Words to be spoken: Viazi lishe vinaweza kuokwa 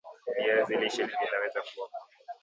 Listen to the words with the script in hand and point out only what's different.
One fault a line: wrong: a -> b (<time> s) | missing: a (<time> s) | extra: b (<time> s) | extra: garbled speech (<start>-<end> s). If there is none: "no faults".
no faults